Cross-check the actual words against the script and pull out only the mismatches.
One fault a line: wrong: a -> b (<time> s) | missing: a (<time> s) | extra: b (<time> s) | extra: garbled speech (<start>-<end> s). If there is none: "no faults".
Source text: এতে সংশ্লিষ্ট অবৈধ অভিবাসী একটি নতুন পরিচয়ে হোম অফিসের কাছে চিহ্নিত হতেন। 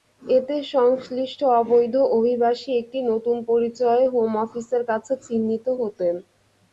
no faults